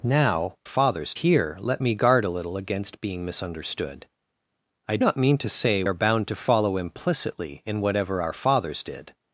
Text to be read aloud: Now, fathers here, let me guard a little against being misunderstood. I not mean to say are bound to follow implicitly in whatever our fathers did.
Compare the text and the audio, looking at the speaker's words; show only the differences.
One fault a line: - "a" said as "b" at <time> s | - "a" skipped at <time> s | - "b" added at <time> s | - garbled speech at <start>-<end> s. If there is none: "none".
none